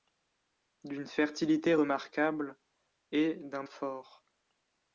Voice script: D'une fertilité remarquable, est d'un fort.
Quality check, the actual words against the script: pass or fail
pass